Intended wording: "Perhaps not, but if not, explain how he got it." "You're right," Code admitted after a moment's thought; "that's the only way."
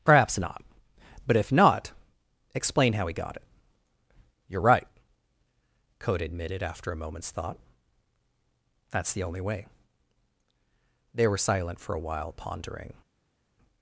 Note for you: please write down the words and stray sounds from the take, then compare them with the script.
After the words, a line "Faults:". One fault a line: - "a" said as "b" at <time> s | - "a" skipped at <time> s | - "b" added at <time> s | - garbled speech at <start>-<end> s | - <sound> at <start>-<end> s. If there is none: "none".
"Perhaps not, but if not, explain how he got it." "You're right," Code admitted after a moment's thought; "that's the only way." They were silent for a while, pondering
Faults:
- "They were silent for a while pondering" added at 11.1 s